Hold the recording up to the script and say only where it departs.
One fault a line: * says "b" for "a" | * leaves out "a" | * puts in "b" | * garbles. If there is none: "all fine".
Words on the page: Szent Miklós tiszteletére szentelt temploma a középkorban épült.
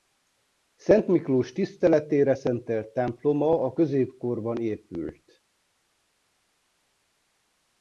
all fine